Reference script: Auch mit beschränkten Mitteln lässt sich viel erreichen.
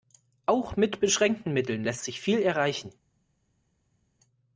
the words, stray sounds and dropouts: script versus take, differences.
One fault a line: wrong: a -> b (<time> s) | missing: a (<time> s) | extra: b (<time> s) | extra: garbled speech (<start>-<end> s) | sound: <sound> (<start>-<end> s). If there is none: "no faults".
no faults